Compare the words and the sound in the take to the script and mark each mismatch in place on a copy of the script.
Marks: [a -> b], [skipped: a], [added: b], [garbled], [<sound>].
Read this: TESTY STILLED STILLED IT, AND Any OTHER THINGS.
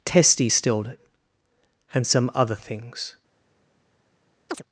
TESTY STILLED [skipped: STILLED] IT, AND [Any -> SOME] OTHER THINGS. [chirp]